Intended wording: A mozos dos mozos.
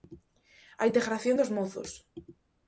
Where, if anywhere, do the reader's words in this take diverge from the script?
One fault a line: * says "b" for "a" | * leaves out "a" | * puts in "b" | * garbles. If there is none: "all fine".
* says "integración" for "mozos"